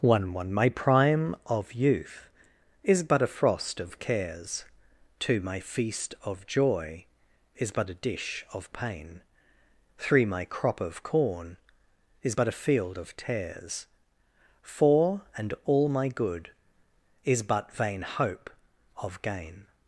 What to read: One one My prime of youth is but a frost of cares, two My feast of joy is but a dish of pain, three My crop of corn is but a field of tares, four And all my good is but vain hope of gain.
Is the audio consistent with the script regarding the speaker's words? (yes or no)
yes